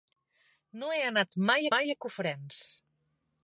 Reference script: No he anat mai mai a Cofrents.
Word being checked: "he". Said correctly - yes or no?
yes